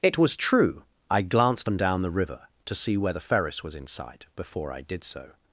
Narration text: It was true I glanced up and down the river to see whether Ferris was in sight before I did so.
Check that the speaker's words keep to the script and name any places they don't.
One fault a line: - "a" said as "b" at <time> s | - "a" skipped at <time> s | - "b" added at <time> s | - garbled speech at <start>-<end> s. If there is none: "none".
- "up" skipped at 1.7 s